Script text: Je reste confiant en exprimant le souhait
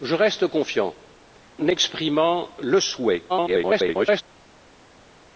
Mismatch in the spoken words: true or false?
true